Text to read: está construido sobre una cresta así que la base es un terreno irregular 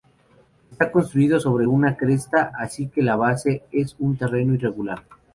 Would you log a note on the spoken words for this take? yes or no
no